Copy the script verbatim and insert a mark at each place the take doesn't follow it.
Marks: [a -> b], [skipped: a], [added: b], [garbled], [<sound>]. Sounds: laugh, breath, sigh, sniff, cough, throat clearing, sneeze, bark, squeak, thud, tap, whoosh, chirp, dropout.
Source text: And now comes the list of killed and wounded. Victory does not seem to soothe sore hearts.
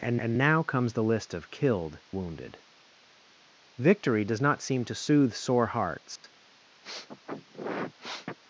And [added: and] now comes the list of killed [skipped: and] wounded. Victory does not seem to soothe sore hearts. [dropout] [sniff]